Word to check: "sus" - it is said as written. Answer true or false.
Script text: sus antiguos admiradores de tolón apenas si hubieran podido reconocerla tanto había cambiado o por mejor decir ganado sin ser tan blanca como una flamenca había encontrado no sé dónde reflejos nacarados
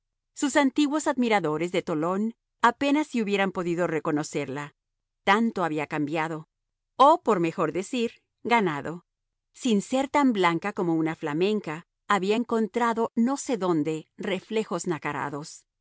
true